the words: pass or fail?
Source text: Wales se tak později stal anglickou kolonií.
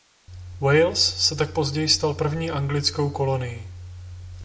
fail